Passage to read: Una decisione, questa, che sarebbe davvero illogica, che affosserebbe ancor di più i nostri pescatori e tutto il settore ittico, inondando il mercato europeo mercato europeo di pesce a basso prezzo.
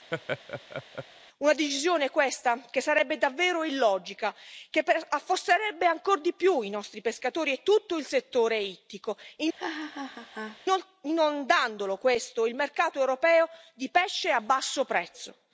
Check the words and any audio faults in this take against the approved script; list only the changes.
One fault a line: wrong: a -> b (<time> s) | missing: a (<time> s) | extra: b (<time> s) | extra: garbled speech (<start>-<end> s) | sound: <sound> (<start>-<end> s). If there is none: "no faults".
sound: laugh (0.1-1.1 s)
sound: laugh (9.6-10.6 s)
missing: mercato europeo (13.5 s)